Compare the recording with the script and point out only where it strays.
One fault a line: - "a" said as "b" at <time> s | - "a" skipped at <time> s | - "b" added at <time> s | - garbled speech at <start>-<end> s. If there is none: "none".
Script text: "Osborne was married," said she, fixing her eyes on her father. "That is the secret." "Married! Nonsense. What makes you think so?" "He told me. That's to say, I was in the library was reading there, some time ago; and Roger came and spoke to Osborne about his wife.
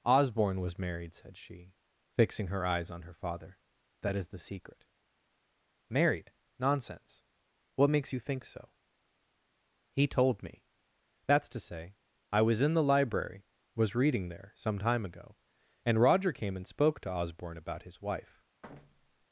none